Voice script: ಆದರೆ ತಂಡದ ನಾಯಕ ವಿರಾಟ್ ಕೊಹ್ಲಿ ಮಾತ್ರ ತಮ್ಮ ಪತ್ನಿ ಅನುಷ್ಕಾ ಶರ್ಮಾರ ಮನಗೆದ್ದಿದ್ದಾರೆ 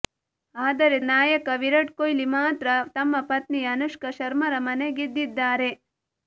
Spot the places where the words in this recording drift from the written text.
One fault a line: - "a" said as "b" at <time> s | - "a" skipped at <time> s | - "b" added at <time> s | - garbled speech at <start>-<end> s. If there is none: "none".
- "ತಂಡದ" skipped at 1.0 s